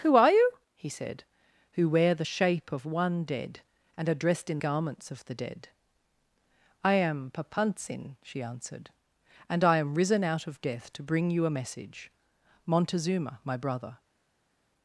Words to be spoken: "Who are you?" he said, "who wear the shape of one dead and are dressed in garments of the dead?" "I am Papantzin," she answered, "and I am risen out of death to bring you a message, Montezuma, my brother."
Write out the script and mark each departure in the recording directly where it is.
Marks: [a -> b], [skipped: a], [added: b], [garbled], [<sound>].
"Who are you?" he said, "who wear the shape of one dead and are dressed in garments of the dead?" "I am Papantzin," she answered, "and I am risen out of death to bring you a message, Montezuma, my brother."